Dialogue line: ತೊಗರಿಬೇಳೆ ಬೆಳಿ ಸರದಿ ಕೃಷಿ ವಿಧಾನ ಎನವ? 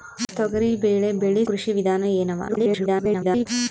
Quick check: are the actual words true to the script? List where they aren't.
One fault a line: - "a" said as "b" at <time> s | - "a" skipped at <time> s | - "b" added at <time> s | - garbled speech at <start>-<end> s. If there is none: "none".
- "ಸರದಿ" skipped at 1.4 s
- garbled speech at 2.5-3.5 s